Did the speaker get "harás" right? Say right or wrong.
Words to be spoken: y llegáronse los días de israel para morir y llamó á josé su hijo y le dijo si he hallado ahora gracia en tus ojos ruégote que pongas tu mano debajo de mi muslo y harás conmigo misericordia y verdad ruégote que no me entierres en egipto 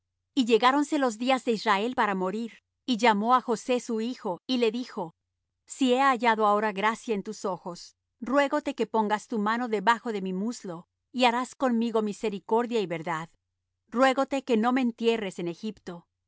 right